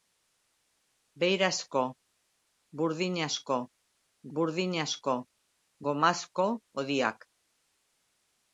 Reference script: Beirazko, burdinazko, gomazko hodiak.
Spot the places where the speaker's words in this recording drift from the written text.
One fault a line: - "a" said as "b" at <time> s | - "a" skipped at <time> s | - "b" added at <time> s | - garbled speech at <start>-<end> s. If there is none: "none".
- "burdinazko" added at 4.4 s